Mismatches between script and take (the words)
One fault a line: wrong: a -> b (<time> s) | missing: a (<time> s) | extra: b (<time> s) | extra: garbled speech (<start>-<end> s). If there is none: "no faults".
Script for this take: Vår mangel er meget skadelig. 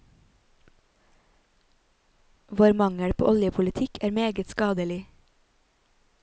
extra: på oljepolitikk (3.1 s)